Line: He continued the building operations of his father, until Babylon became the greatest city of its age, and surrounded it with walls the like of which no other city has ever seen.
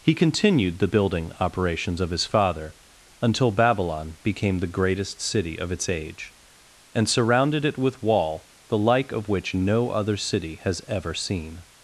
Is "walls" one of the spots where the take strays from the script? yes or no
yes